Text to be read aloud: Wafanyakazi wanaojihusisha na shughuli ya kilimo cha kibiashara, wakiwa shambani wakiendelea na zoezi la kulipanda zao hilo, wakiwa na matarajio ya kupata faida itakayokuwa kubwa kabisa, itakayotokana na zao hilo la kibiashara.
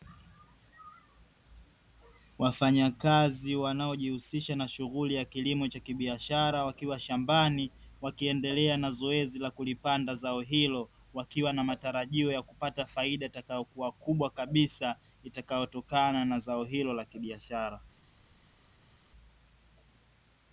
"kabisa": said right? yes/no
yes